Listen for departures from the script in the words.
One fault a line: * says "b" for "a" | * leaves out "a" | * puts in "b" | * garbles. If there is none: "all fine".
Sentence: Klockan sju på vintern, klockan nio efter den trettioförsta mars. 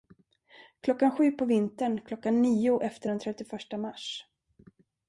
all fine